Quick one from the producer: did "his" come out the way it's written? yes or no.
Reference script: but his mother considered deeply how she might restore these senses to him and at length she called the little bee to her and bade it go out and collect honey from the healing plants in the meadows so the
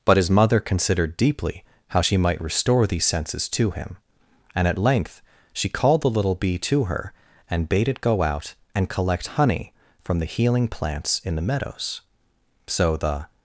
yes